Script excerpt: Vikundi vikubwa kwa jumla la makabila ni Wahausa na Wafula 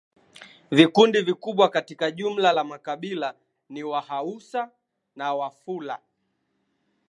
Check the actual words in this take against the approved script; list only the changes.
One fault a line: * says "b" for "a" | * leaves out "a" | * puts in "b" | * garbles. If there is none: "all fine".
* says "katika" for "kwa"